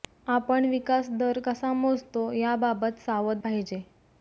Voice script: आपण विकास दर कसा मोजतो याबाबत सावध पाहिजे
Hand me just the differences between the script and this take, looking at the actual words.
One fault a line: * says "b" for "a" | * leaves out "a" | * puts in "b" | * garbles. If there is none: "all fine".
all fine